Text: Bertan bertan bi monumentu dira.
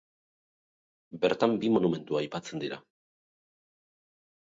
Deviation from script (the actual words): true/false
true